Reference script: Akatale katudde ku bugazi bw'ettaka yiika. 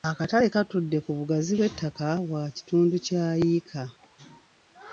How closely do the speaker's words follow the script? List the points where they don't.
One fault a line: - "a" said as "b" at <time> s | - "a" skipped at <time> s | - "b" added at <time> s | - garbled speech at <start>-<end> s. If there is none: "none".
- "bwa kitundu kya" added at 2.3 s